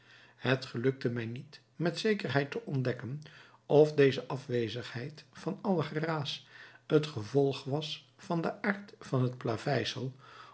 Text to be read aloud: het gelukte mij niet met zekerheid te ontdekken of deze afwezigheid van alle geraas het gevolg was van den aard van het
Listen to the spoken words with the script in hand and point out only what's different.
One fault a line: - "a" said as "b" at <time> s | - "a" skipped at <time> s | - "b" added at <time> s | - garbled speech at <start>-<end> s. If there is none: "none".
none